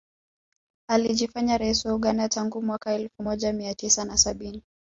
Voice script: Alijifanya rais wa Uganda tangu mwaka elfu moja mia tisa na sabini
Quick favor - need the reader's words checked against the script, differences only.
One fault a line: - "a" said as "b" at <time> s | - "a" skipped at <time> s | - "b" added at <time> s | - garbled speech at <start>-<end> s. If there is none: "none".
none